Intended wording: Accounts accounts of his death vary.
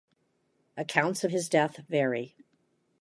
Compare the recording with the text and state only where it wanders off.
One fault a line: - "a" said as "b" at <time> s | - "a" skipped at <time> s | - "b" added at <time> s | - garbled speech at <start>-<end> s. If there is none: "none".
- "accounts" skipped at 1.2 s